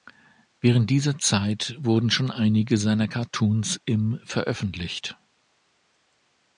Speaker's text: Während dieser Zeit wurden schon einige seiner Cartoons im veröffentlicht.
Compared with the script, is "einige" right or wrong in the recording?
right